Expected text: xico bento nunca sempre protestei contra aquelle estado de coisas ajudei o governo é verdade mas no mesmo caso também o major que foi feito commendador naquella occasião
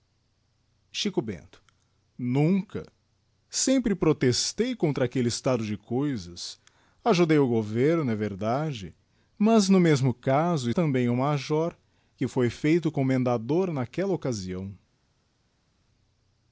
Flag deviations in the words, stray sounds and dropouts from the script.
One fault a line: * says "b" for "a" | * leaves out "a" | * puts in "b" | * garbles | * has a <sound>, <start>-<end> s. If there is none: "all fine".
all fine